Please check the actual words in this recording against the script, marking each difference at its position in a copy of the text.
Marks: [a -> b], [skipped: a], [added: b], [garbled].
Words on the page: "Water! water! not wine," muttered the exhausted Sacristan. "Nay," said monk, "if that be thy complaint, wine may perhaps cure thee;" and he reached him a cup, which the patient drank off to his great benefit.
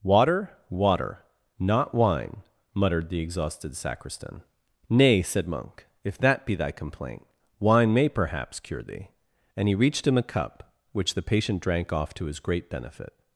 "Water! water! not wine," muttered the exhausted Sacristan. "Nay," said monk, "if that be thy complaint, wine may perhaps cure thee;" and he reached him a cup, which the patient drank off to his great benefit.